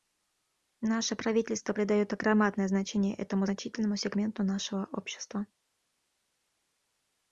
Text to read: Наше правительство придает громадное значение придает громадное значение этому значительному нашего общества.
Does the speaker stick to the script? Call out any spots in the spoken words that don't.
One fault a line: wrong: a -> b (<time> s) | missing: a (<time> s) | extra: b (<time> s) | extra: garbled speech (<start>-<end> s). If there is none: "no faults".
missing: придает громадное значение (3.2 s)
extra: сегменту (3.9 s)